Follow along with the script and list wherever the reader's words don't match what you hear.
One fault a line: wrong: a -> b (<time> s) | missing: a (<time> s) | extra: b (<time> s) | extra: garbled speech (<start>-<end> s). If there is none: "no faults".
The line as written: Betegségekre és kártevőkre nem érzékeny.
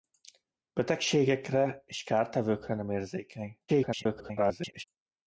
extra: garbled speech (3.7-4.8 s)